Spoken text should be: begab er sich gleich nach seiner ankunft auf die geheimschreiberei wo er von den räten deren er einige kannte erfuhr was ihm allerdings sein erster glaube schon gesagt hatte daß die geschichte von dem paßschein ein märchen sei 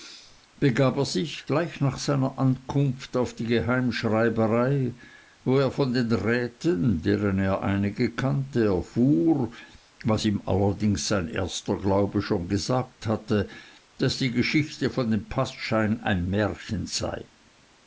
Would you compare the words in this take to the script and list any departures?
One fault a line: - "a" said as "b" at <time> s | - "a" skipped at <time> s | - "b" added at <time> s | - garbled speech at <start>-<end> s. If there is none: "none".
none